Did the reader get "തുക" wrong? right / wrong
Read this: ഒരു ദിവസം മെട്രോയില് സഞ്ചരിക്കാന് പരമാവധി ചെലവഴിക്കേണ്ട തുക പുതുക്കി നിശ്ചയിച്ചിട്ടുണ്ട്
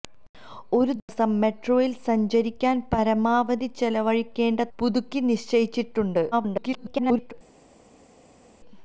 wrong